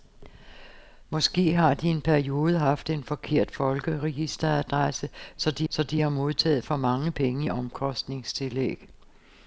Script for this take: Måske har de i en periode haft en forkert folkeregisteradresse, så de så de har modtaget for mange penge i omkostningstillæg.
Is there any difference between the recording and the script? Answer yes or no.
no